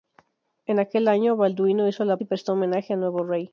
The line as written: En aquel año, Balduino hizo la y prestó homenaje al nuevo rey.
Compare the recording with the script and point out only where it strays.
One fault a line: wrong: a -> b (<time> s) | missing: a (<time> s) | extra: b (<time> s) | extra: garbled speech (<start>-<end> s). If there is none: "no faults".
no faults